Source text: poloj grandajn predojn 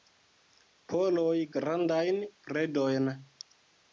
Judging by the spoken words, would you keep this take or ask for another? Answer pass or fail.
pass